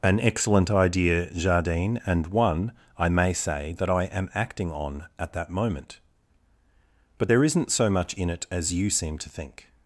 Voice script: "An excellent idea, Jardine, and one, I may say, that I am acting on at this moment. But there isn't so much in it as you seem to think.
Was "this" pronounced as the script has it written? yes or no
no